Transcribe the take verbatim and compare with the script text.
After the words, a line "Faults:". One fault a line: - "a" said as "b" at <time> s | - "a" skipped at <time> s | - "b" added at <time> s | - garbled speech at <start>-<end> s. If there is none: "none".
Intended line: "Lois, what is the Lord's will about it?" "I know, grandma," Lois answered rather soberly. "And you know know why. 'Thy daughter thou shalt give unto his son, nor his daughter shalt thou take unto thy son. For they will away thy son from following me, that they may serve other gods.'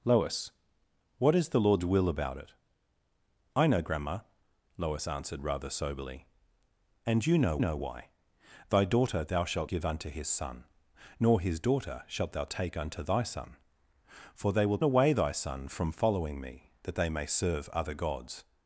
"Lois, what is the Lord's will about it?" "I know, grandma," Lois answered rather soberly. "And you know know why. 'Thy daughter thou shalt give unto his son, nor his daughter shalt thou take unto thy son. For they will away thy son from following me, that they may serve other gods.'
Faults:
none